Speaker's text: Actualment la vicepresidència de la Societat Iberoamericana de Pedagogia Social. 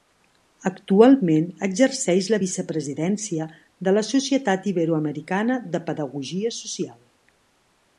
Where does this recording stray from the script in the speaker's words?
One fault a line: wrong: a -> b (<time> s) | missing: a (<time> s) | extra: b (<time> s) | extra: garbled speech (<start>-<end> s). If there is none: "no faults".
extra: exerceix (1.7 s)